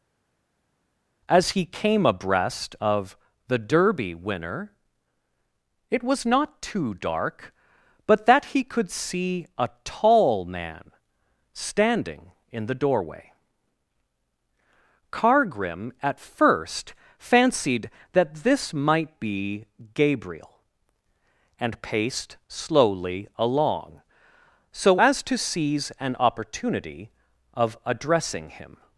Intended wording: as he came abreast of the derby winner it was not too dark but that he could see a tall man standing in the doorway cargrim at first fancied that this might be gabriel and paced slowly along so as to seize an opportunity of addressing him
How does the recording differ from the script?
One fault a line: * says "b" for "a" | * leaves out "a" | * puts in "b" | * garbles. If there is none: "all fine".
all fine